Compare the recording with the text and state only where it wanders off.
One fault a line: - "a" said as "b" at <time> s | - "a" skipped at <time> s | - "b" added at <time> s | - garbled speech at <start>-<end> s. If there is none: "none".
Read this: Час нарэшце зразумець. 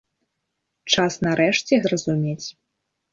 none